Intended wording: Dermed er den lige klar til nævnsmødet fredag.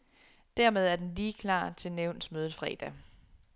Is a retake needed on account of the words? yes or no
no